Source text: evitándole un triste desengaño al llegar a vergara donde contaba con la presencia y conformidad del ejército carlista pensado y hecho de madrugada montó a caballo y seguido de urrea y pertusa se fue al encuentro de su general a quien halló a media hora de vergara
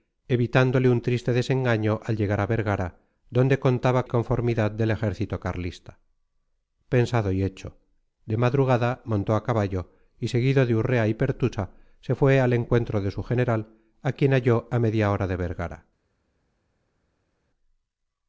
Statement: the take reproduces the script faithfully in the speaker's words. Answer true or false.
false